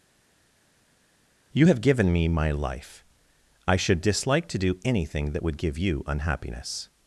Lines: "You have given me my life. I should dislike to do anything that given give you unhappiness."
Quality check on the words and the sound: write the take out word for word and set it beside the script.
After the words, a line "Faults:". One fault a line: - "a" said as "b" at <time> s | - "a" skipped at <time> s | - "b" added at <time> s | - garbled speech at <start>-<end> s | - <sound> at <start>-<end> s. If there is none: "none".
"You have given me my life. I should dislike to do anything that would give you unhappiness."
Faults:
- "given" said as "would" at 5.4 s